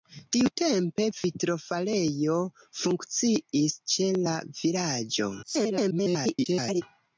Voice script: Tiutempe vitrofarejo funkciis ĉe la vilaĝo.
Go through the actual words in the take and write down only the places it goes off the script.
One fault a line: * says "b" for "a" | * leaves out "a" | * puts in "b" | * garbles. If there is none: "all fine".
* garbles